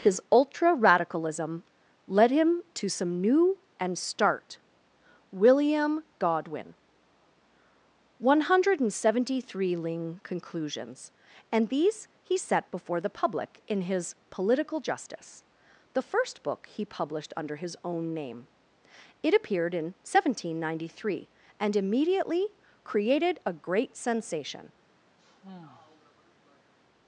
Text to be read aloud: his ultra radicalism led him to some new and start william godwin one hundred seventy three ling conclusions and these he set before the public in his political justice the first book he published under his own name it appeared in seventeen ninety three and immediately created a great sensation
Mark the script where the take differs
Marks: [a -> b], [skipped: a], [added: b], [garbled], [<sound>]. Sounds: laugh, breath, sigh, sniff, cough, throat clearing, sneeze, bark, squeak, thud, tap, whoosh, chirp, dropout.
his ultra radicalism led him to some new and start william godwin one hundred seventy three ling conclusions and these he set before the public in his political justice the first book he published under his own name it appeared in seventeen ninety three and immediately created a great sensation [sigh]